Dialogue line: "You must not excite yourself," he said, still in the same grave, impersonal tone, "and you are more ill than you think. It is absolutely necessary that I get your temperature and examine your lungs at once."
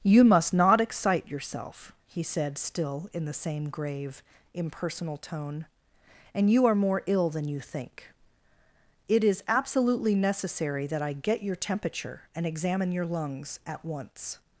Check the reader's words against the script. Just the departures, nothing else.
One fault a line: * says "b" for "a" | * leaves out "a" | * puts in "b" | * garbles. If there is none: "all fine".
all fine